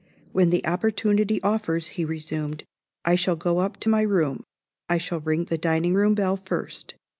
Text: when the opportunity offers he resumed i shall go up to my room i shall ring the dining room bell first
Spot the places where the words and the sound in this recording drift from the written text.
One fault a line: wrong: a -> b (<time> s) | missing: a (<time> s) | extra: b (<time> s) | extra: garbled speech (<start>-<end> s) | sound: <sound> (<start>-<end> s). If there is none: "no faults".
no faults